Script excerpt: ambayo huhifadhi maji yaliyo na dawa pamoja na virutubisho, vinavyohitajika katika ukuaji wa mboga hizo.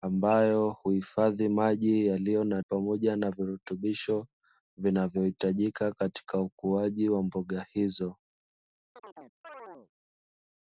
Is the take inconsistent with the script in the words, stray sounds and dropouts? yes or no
yes